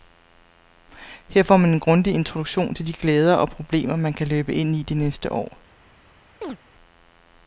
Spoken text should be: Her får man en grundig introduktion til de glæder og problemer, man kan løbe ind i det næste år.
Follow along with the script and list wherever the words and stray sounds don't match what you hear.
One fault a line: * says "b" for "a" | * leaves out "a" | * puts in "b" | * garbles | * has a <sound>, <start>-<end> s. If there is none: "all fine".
* has a chirp, 6.4-6.6 s